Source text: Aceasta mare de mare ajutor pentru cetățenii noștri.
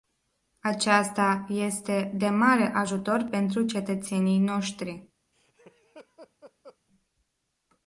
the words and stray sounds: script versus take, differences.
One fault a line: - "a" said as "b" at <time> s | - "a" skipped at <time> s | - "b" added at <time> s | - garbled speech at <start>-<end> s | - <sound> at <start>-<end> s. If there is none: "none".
- "mare" said as "este" at 1.5 s
- laugh at 5.3-6.8 s